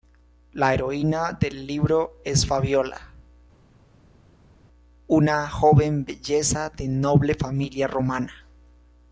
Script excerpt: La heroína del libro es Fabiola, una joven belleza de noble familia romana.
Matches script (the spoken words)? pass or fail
pass